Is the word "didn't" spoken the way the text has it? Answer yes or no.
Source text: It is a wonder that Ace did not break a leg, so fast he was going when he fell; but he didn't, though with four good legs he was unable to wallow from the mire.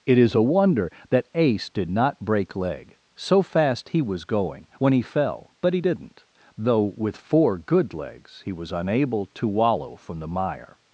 yes